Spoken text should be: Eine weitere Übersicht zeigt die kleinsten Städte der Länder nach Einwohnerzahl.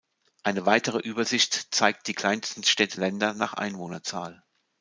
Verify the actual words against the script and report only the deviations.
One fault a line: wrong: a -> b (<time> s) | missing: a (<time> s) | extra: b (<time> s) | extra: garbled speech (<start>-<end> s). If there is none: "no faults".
missing: der (3.0 s)